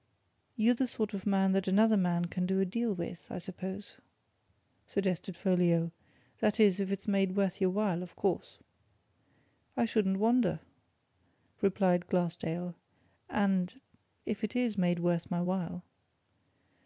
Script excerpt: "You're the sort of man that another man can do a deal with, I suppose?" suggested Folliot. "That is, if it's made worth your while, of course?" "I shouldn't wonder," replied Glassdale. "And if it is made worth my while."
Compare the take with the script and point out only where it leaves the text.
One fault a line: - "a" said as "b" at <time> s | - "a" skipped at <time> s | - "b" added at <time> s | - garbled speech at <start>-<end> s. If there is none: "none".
none